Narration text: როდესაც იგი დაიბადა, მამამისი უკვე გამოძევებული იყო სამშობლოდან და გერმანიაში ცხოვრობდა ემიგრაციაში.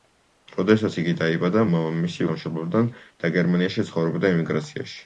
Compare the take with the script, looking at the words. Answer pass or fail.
fail